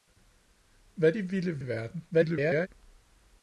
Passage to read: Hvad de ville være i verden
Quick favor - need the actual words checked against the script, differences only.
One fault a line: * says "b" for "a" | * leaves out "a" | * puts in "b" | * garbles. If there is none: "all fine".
* leaves out "være"
* garbles